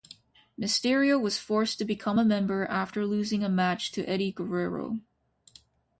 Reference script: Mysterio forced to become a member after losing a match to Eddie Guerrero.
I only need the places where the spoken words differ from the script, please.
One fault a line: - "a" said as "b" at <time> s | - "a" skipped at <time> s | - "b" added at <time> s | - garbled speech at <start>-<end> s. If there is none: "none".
- "was" added at 1.2 s